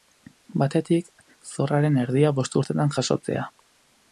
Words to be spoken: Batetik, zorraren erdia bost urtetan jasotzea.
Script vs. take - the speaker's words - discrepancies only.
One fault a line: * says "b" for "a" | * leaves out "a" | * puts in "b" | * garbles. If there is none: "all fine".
all fine